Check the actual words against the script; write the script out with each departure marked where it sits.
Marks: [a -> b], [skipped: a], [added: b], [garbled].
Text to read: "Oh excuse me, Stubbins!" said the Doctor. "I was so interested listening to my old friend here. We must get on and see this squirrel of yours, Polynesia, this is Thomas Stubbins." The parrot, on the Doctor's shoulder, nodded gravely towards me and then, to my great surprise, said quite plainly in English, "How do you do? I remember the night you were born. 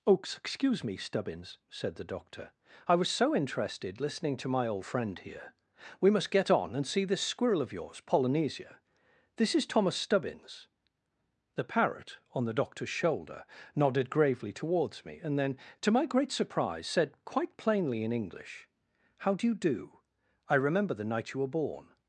"Oh excuse me, Stubbins!" said the Doctor. "I was so interested listening to my old friend here. We must get on and see this squirrel of yours, Polynesia, this is Thomas Stubbins." The parrot, on the Doctor's shoulder, nodded gravely towards me and then, to my great surprise, said quite plainly in English, "How do you do? I remember the night you were born.